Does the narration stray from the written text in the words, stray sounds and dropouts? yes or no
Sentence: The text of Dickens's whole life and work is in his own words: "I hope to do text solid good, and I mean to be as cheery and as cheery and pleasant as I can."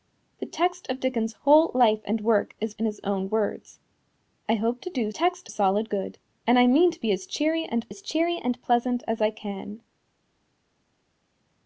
no